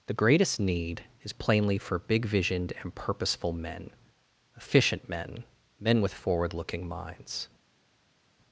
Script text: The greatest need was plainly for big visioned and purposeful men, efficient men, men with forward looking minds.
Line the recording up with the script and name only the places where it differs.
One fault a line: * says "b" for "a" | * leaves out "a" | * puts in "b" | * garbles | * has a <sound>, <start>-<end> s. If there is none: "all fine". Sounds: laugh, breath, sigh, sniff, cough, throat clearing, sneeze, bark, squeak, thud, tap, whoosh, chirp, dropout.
* says "is" for "was"